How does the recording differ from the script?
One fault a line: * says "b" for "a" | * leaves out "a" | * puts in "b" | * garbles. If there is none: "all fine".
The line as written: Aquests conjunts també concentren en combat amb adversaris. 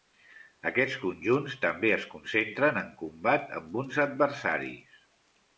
* puts in "es"
* puts in "uns"